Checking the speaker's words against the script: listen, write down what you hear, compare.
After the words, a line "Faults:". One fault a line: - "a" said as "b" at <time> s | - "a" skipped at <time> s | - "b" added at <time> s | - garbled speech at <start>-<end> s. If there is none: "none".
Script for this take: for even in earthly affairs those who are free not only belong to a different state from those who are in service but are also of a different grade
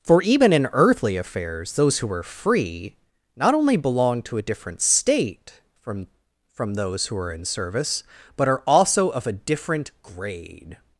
for even in earthly affairs those who are free not only belong to a different state from from those who are in service but are also of a different grade
Faults:
- "from" added at 6.5 s